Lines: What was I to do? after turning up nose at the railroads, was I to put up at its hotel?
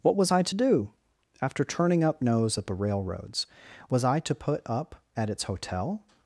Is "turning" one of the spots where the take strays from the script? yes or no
no